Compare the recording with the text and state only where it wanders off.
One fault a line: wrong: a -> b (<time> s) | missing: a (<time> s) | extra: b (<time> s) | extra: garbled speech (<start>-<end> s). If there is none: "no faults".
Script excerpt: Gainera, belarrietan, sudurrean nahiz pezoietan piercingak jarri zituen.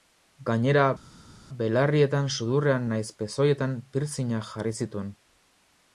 no faults